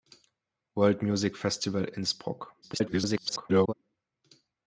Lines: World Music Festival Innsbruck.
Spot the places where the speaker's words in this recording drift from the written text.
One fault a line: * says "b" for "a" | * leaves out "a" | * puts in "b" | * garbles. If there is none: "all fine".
* garbles